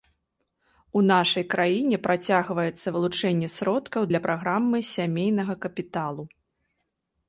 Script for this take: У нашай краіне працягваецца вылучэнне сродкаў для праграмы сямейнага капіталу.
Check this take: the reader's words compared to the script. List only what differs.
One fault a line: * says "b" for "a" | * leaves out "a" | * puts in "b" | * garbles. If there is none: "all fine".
all fine